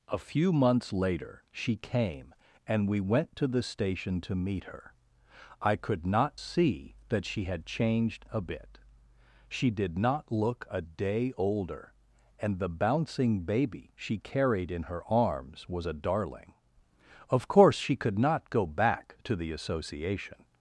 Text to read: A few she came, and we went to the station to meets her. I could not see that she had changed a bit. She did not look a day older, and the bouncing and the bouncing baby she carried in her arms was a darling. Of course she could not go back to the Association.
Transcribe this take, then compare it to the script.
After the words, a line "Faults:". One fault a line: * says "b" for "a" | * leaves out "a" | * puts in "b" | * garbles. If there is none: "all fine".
A few months later she came, and we went to the station to meet her. I could not see that she had changed a bit. She did not look a day older, and the bouncing baby she carried in her arms was a darling. Of course she could not go back to the Association.
Faults:
* puts in "months later"
* says "meet" for "meets"
* leaves out "and the bouncing"